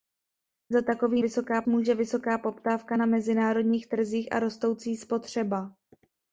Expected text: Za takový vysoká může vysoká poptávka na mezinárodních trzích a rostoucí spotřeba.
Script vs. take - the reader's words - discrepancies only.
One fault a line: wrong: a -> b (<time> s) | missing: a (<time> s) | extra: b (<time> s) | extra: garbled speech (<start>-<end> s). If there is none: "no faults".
no faults